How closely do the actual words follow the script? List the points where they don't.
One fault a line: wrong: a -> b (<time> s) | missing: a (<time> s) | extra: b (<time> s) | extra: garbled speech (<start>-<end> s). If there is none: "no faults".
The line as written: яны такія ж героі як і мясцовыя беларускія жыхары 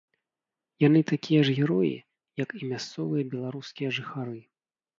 no faults